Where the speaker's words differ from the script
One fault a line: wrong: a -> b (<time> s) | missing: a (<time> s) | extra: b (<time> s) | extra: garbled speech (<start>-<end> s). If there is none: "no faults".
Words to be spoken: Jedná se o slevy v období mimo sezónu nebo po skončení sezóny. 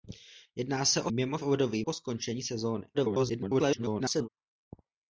wrong: slevy -> mimo (1.1 s)
missing: mimo sezónu nebo (1.8 s)
extra: garbled speech (2.9-4.3 s)